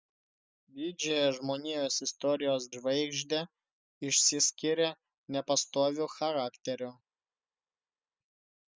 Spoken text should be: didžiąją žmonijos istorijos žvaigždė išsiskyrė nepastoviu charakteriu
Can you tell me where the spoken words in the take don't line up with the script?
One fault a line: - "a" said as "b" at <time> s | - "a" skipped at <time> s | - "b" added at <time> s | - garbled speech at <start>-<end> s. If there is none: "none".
none